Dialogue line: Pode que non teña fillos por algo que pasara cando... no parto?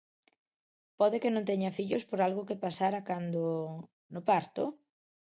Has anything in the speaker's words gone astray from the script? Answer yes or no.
no